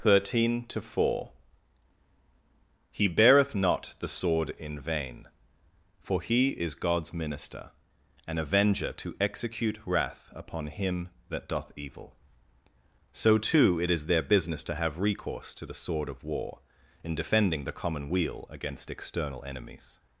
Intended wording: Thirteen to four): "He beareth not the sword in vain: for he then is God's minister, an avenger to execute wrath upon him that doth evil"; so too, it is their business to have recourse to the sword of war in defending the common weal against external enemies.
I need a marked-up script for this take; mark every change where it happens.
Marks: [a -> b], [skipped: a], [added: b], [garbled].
Thirteen to four): "He beareth not the sword in vain: for he [skipped: then] is God's minister, an avenger to execute wrath upon him that doth evil"; so too, it is their business to have recourse to the sword of war in defending the common weal against external enemies.